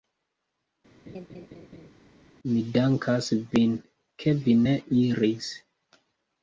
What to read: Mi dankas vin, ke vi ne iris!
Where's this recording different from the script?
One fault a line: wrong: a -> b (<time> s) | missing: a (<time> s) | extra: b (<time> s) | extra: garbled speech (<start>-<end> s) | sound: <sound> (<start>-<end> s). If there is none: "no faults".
sound: laugh (1.1-1.9 s)